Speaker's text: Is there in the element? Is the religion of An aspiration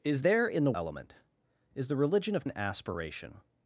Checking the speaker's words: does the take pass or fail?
pass